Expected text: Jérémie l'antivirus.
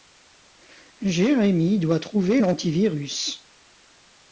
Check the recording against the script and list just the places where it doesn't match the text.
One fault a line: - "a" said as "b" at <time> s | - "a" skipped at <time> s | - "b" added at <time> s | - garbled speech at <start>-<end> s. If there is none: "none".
- "doit trouver" added at 1.8 s